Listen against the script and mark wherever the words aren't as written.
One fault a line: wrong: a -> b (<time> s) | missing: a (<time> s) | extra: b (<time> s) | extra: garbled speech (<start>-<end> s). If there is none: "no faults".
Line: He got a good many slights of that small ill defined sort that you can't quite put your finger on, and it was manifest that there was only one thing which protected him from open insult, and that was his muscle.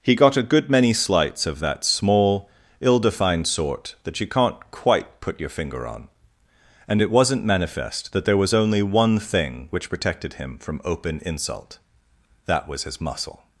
wrong: was -> wasn't (7.1 s)
missing: and (11.8 s)